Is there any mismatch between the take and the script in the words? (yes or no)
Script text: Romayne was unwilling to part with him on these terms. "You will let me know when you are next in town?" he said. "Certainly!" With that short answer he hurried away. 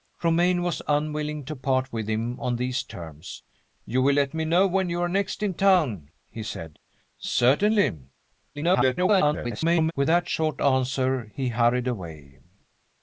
yes